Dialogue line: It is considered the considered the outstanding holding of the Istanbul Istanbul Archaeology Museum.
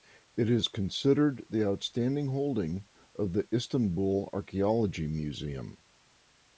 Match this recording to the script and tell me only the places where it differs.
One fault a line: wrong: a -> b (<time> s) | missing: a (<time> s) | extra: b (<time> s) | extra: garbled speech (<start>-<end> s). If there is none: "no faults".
missing: considered the (1.7 s)
missing: Istanbul (4.3 s)